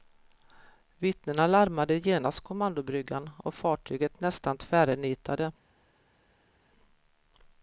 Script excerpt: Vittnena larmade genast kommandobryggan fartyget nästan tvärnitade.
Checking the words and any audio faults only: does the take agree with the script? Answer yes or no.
no